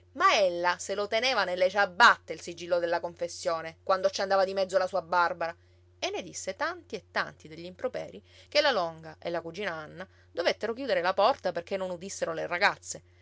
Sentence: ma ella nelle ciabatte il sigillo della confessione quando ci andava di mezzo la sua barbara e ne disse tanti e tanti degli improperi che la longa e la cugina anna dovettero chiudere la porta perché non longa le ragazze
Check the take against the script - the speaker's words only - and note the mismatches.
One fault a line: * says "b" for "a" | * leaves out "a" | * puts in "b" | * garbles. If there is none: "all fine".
* puts in "se lo teneva"
* says "udissero" for "longa"